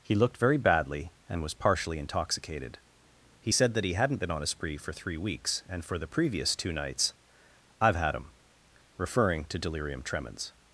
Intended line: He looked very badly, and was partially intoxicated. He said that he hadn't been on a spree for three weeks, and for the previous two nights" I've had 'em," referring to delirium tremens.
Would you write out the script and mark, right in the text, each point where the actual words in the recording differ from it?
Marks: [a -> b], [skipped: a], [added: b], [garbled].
He looked very badly, and was partially intoxicated. He said that he hadn't been on a spree for three weeks, and for the previous two nights" I've had 'em," referring to delirium tremens.